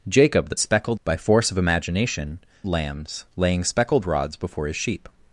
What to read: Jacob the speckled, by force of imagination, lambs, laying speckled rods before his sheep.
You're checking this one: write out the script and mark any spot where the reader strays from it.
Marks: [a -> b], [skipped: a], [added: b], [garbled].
Jacob the speckled, by force of imagination, lambs, laying speckled rods before his sheep.